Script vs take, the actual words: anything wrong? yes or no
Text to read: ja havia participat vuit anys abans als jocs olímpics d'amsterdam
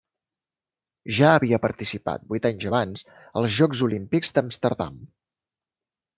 no